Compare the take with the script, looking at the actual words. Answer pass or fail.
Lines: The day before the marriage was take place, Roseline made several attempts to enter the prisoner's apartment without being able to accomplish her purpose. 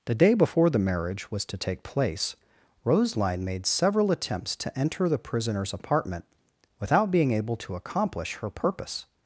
fail